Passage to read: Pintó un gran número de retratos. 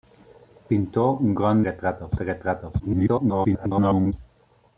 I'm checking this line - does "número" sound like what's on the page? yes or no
no